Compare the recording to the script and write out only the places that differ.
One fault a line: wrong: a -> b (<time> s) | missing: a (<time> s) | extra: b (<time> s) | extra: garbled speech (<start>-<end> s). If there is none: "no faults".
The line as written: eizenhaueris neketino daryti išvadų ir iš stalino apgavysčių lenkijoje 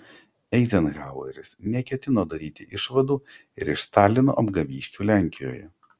no faults